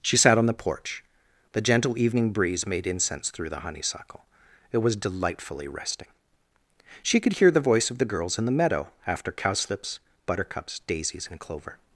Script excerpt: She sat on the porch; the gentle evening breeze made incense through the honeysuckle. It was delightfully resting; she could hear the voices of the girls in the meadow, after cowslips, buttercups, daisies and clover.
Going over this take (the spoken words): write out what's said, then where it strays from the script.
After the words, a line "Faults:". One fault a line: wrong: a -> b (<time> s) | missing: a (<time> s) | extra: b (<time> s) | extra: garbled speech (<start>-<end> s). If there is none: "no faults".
She sat on the porch; the gentle evening breeze made incense through the honeysuckle. It was delightfully resting; she could hear the voice of the girls in the meadow, after cowslips, buttercups, daisies and clover.
Faults:
wrong: voices -> voice (7.6 s)